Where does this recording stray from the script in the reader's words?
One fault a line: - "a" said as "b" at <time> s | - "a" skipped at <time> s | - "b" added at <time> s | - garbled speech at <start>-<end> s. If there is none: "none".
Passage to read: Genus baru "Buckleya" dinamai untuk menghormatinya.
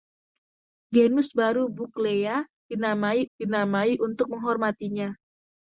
- "dinamai" added at 3.3 s